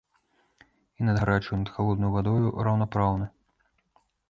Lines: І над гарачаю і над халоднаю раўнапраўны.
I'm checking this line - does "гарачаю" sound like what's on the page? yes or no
yes